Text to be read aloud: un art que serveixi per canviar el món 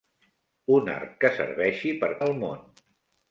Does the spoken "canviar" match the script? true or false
false